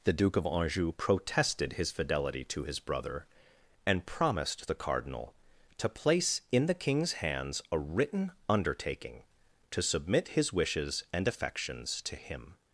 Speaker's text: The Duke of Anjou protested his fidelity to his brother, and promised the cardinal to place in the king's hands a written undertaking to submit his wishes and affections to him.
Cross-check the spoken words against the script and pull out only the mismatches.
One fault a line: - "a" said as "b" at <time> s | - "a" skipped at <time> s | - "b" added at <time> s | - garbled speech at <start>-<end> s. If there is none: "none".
none